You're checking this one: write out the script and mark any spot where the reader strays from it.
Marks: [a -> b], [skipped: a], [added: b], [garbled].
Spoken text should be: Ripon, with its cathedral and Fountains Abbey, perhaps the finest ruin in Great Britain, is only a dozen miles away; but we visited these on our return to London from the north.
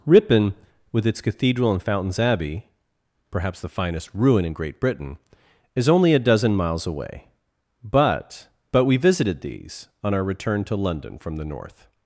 Ripon, with its cathedral and Fountains Abbey, perhaps the finest ruin in Great Britain, is only a dozen miles away; but [added: but] we visited these on our return to London from the north.